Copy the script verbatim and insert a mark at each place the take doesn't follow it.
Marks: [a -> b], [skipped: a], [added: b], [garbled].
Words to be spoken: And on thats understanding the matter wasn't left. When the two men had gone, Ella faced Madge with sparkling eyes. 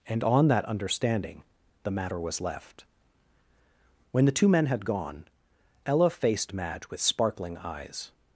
And on [thats -> that] understanding the matter [wasn't -> was] left. When the two men had gone, Ella faced Madge with sparkling eyes.